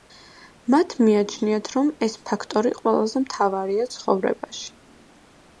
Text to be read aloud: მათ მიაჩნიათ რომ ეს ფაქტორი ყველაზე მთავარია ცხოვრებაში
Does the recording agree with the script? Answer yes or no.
yes